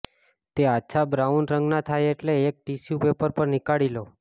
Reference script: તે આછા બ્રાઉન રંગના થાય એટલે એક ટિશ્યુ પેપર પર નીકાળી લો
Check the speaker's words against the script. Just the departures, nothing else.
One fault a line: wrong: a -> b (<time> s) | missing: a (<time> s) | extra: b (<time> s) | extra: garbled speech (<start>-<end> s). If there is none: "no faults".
no faults